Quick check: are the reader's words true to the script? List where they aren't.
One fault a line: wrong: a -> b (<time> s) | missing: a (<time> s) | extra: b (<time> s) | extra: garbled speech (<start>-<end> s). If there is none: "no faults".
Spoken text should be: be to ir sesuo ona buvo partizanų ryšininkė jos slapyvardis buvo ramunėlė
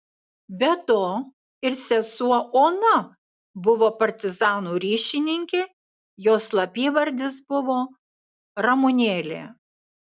no faults